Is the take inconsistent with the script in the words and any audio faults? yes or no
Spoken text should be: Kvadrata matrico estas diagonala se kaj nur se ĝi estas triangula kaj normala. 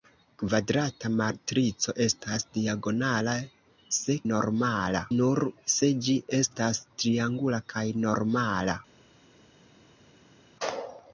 yes